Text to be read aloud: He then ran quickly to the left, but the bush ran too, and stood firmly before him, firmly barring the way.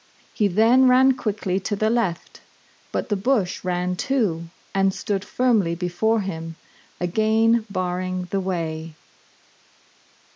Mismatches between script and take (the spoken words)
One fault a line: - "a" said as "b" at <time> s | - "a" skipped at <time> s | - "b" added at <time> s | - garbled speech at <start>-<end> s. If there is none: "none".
- "firmly" said as "again" at 7.0 s